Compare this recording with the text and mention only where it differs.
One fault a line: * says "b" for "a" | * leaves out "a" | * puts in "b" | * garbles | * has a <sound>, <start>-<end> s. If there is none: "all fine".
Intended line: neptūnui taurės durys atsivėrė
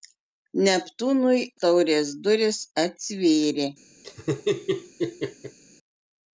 * has a laugh, 4.0-5.6 s